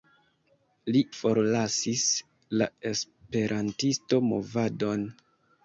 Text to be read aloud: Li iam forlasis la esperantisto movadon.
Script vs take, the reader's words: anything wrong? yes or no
yes